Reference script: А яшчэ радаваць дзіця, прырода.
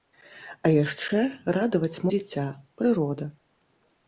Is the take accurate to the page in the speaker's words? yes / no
yes